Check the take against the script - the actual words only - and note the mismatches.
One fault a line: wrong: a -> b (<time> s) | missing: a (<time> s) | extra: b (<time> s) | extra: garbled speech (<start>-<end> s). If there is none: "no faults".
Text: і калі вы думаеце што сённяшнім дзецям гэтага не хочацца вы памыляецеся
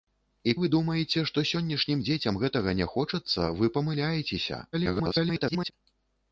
missing: калі (0.5 s)
extra: garbled speech (4.7-5.7 s)